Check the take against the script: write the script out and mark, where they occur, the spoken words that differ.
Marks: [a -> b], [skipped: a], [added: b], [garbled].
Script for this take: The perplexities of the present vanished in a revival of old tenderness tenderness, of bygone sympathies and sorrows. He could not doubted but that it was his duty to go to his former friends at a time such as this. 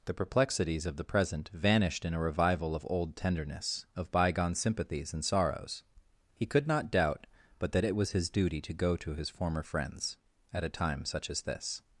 The perplexities of the present vanished in a revival of old tenderness [skipped: tenderness,] of bygone sympathies and sorrows. He could not [doubted -> doubt] but that it was his duty to go to his former friends at a time such as this.